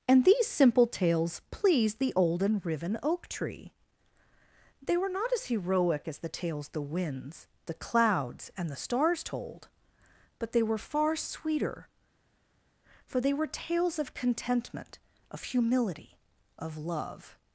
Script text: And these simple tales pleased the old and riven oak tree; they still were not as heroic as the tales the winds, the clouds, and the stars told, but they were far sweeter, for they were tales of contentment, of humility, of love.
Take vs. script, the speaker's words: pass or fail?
fail